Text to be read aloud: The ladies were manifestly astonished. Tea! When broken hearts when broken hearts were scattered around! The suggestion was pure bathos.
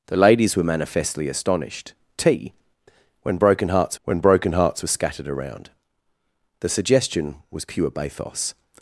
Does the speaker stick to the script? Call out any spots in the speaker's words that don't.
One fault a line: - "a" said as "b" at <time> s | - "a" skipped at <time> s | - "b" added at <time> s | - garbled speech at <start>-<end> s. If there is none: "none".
none